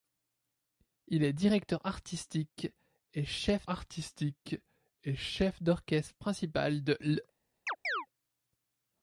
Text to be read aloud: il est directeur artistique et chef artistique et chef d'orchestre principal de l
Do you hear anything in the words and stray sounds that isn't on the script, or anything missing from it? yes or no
yes